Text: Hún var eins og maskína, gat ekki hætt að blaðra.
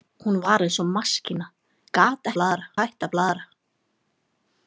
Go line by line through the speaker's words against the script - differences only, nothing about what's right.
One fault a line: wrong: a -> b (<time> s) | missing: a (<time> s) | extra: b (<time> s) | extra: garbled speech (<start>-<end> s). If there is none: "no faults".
wrong: ekki -> blaðra (2.4 s)